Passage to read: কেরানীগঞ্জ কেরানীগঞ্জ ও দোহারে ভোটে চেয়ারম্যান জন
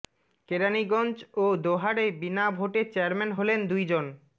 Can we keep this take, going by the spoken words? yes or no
no